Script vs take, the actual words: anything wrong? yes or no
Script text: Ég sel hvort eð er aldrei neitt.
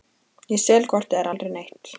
no